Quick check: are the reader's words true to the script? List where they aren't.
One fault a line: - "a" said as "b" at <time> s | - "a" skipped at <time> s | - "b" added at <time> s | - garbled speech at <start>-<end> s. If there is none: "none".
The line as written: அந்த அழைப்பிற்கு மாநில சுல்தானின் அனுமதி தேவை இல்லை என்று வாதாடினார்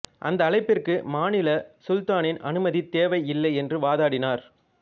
none